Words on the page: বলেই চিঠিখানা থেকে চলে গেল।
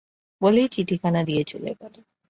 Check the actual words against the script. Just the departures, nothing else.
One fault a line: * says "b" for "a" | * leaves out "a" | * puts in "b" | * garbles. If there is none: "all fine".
* says "দিয়ে" for "থেকে"